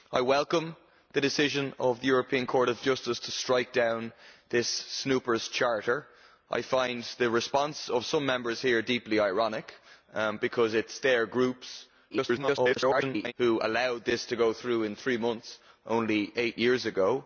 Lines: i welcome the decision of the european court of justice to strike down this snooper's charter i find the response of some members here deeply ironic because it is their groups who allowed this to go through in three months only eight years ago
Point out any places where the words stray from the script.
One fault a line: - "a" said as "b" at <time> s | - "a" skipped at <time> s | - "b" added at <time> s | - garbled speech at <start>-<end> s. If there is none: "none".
- garbled speech at 12.1-13.3 s